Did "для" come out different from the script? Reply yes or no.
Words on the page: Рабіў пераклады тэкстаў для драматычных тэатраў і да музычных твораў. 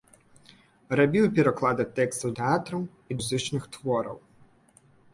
yes